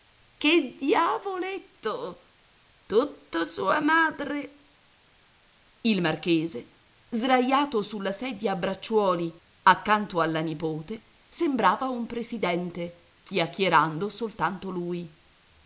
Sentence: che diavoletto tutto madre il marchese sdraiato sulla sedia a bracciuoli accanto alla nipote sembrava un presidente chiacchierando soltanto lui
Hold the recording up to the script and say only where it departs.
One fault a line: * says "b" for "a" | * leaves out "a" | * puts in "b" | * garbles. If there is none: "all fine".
* puts in "sua"